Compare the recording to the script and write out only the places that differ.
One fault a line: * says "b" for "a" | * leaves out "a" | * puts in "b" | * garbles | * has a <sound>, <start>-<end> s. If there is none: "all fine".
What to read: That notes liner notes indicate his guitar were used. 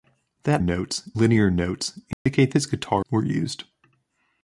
* has a dropout, 2.1-2.3 s